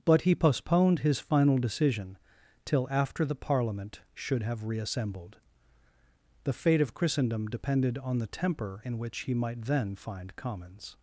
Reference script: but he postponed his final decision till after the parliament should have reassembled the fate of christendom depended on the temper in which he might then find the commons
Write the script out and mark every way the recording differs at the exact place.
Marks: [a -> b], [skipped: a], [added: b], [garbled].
but he postponed his final decision till after the parliament should have reassembled the fate of christendom depended on the temper in which he might then find [skipped: the] commons